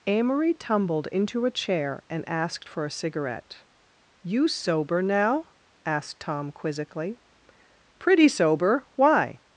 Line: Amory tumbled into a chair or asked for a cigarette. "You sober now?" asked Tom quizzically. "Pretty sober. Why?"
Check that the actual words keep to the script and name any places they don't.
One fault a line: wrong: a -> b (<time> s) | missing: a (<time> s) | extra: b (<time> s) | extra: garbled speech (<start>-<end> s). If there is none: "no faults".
wrong: or -> and (2.1 s)